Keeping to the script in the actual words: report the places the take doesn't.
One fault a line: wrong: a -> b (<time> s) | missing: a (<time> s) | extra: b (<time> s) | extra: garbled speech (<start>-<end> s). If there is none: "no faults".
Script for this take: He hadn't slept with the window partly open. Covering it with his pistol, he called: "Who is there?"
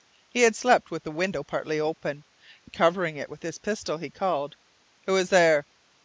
wrong: hadn't -> had (0.4 s)